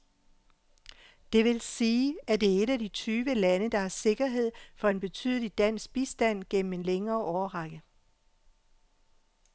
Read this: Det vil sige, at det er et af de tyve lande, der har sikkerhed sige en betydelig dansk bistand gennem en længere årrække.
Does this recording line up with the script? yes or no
no